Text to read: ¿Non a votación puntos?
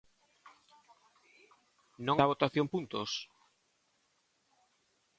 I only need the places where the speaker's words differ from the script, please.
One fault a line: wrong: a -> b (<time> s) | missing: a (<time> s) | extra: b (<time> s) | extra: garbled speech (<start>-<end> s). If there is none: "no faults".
no faults